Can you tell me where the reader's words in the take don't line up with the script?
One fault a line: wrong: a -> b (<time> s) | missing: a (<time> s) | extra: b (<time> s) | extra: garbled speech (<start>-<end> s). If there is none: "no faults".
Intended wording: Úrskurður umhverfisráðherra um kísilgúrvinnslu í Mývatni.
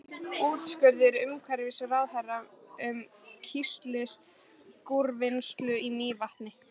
no faults